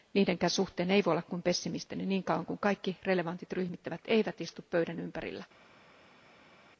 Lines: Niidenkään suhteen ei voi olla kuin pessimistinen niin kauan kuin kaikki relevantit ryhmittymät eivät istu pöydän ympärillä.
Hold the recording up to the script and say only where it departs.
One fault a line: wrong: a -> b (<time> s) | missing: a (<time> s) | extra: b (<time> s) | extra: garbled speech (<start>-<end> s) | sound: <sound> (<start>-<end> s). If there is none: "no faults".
no faults